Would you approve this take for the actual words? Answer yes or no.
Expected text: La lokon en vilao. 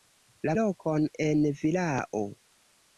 yes